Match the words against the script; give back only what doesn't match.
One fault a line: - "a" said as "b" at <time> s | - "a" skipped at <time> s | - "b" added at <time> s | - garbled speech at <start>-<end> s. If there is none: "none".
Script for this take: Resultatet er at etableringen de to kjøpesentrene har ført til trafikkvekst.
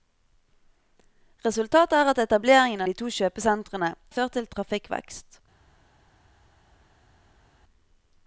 none